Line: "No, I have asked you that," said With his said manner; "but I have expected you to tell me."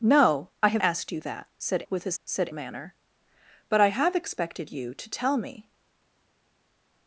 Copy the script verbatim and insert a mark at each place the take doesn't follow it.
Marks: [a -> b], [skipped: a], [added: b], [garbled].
"No, I have asked you that," said With his said manner; "but I have expected you to tell me."